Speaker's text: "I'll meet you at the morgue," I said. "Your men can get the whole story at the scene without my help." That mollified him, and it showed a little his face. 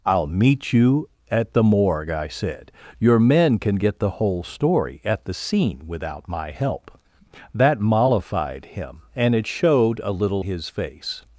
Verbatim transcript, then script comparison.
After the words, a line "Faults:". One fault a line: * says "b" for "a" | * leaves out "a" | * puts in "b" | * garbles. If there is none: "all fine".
"I'll meet you at the morgue," I said. "Your men can get the whole story at the scene without my help." That mollified him, and it showed a little his face.
Faults:
all fine